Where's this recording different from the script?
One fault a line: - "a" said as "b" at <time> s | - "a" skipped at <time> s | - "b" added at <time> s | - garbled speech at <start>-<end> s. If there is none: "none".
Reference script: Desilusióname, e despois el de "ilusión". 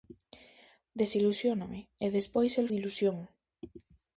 none